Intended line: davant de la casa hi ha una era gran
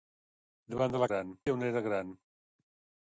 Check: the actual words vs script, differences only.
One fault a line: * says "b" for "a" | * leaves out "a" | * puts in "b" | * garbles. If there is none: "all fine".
* says "gran" for "casa"